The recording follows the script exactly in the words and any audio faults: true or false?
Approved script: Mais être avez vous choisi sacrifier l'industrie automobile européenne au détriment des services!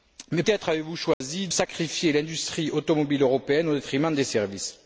false